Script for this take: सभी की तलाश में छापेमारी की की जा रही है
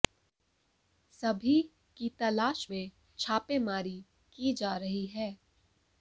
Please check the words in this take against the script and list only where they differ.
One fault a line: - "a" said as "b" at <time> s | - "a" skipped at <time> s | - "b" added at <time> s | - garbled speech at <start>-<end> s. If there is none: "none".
- "की" skipped at 4.5 s